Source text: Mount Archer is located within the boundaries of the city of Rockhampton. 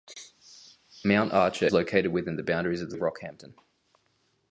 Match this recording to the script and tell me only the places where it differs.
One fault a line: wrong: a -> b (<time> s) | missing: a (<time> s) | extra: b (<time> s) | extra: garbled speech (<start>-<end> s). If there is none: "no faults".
missing: is (1.7 s)
missing: city (2.9 s)